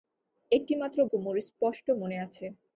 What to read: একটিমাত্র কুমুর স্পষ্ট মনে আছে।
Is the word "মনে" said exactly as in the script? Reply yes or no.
yes